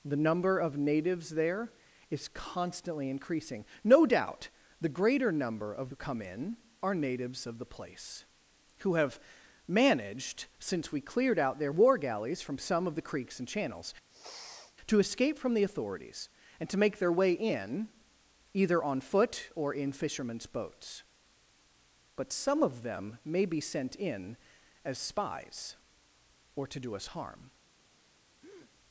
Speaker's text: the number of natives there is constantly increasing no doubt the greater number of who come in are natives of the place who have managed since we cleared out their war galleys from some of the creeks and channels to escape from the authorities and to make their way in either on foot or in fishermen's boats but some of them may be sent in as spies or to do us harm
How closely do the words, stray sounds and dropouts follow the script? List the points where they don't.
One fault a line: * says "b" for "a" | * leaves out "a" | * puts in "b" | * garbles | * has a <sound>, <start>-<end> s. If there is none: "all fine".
* has a sniff, 14.1-14.8 s
* has a breath, 28.4-28.7 s